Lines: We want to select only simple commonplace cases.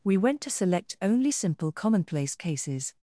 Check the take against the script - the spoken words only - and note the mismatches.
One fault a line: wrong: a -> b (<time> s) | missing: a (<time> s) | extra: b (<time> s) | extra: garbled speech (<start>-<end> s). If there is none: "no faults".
wrong: want -> went (0.2 s)